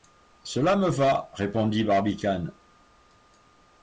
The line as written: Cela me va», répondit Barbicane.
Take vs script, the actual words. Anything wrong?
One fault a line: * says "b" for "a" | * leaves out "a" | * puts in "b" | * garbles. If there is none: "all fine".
all fine